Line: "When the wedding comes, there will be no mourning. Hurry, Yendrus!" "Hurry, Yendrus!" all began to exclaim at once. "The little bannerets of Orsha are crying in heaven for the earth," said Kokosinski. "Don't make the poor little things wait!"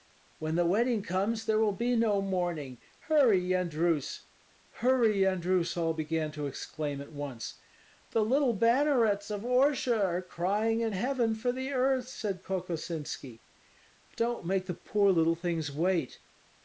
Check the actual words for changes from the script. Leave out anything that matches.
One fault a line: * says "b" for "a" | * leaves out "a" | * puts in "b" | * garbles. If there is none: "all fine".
all fine